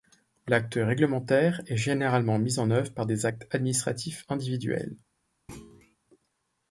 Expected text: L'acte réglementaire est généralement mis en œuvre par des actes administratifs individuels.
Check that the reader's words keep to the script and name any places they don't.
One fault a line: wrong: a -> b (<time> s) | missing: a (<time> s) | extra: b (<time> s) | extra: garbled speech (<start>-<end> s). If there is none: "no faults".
no faults